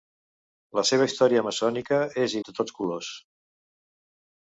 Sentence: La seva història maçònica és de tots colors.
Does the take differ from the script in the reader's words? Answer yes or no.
no